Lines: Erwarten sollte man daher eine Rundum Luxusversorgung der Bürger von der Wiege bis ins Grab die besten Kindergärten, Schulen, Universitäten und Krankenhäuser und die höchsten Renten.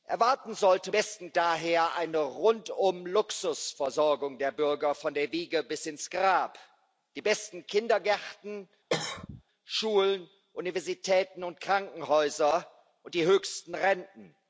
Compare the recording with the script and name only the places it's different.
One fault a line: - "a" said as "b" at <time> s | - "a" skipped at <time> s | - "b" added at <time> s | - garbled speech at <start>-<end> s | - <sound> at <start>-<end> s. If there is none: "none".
- "man" said as "besten" at 0.9 s
- cough at 8.9-9.4 s